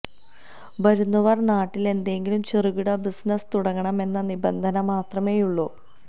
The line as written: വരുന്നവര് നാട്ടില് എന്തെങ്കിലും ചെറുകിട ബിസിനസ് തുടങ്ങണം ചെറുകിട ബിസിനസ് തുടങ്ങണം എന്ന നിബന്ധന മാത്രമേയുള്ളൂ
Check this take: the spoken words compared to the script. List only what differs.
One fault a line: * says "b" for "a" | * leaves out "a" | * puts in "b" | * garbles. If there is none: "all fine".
* leaves out "ചെറുകിട ബിസിനസ് തുടങ്ങണം"